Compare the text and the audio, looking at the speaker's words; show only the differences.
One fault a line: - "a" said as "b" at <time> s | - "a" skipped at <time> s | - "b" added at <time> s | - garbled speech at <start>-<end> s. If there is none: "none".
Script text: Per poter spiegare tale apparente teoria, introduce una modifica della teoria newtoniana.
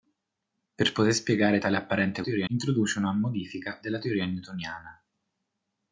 none